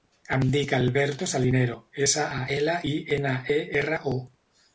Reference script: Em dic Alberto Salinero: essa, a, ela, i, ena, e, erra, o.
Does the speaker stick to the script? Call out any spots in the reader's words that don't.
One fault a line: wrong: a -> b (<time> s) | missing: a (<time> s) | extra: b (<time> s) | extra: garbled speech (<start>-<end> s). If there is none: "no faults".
no faults